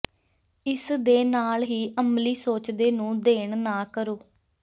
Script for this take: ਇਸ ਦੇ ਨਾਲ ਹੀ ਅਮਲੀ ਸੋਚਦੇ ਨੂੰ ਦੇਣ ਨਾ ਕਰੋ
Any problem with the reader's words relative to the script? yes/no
no